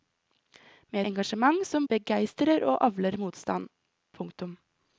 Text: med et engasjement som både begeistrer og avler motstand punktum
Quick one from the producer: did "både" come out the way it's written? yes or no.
no